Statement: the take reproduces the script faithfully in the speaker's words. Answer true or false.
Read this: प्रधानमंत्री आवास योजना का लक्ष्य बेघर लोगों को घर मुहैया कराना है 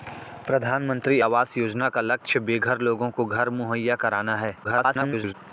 false